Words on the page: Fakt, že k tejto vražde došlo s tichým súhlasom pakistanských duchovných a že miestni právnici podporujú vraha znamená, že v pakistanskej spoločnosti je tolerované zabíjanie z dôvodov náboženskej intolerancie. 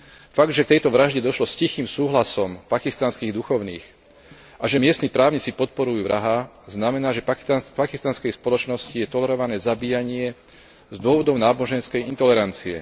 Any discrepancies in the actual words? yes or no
no